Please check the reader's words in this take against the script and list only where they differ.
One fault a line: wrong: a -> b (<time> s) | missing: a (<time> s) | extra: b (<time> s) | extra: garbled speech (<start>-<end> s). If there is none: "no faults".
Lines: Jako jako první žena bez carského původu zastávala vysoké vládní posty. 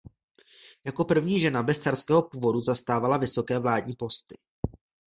missing: jako (1.1 s)